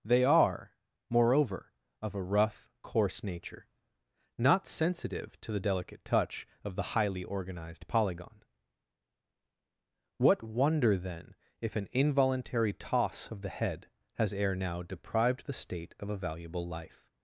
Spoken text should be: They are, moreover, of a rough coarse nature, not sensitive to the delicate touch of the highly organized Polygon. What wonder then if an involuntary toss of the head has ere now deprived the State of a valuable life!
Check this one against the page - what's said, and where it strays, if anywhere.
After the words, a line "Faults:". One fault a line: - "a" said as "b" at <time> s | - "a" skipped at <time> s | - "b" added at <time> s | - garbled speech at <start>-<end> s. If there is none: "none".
They are, moreover, of a rough coarse nature, not sensitive to the delicate touch of the highly organized Polygon. What wonder then if an involuntary toss of the head has ere now deprived the State of a valuable life!
Faults:
none